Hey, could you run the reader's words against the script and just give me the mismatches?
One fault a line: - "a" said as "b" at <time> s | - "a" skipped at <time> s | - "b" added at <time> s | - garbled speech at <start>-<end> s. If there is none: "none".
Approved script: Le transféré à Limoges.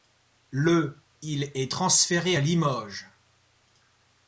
- "il est" added at 1.2 s